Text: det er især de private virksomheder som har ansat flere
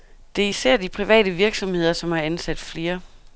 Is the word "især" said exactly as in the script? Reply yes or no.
yes